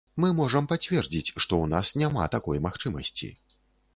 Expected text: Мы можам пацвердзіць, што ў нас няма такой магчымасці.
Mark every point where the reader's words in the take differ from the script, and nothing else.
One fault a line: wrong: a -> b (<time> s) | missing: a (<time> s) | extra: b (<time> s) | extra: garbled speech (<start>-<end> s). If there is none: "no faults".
no faults